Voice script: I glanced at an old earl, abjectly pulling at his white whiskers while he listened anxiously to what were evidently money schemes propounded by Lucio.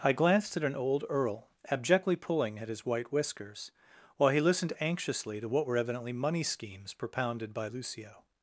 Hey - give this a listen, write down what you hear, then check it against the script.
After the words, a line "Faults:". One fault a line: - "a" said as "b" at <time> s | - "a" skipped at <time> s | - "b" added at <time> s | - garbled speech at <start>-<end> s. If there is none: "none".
I glanced at an old earl, abjectly pulling at his white whiskers while he listened anxiously to what were evidently money schemes propounded by Lucio.
Faults:
none